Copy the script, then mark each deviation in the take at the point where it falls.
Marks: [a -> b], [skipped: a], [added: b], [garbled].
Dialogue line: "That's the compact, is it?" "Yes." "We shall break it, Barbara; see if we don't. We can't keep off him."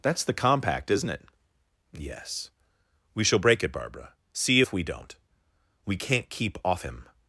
"That's the compact, [is -> isn't] it?" "Yes." "We shall break it, Barbara; see if we don't. We can't keep off him."